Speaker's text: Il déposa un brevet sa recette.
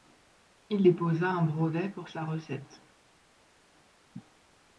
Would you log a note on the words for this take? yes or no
yes